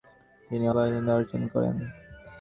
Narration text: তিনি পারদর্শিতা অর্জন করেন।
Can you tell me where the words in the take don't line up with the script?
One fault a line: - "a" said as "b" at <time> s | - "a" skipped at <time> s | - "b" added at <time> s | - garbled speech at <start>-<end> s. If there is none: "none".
none